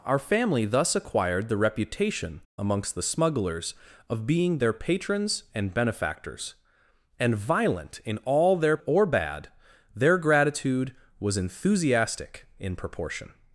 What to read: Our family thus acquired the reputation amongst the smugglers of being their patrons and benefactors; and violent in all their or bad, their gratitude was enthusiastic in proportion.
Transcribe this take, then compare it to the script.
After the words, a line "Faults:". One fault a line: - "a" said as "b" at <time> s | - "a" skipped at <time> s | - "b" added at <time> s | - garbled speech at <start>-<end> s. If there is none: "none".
Our family thus acquired the reputation amongst the smugglers of being their patrons and benefactors; and violent in all their or bad, their gratitude was enthusiastic in proportion.
Faults:
none